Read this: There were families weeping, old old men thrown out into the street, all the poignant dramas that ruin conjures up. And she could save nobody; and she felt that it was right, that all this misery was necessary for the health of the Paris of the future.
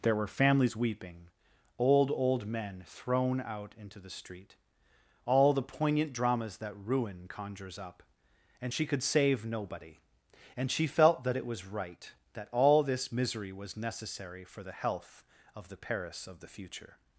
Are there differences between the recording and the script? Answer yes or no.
no